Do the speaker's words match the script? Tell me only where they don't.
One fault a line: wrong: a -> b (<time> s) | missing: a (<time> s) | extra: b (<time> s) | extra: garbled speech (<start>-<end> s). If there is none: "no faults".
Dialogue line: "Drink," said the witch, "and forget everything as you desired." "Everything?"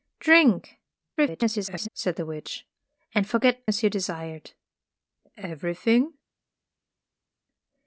extra: garbled speech (1.2-1.9 s)
missing: everything (3.6 s)